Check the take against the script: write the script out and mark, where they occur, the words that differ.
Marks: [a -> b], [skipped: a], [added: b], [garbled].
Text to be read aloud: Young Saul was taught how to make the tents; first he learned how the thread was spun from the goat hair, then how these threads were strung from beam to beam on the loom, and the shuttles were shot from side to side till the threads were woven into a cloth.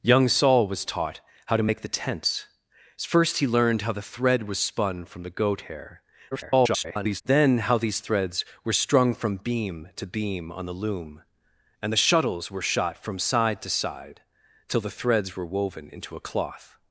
Young Saul was taught how to make the tents; first he learned how the thread was spun from the goat hair, [garbled] then how these threads were strung from beam to beam on the loom, and the shuttles were shot from side to side till the threads were woven into a cloth.